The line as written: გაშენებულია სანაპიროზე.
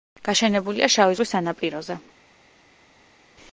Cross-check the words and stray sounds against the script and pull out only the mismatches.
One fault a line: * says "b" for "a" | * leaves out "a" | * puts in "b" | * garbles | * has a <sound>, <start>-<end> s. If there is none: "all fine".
* puts in "შავი ზღვის"